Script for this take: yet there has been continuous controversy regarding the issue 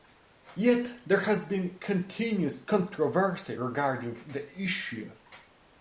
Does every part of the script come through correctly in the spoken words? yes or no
yes